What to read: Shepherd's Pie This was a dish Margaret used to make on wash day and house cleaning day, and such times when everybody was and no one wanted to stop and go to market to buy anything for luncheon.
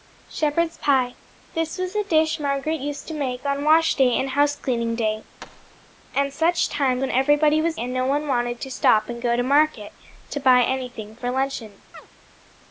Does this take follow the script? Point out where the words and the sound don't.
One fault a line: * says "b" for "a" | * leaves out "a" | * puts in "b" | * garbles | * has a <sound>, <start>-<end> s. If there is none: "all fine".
* has a thud, 5.4-5.9 s
* has a chirp, 11.9-12.1 s